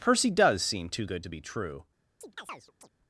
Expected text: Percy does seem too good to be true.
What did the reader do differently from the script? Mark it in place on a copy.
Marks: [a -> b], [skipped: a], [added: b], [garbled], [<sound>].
Percy does seem too good to be true. [chirp]